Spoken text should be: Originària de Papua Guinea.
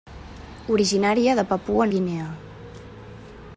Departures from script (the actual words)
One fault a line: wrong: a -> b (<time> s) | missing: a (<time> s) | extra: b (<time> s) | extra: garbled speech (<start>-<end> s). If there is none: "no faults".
no faults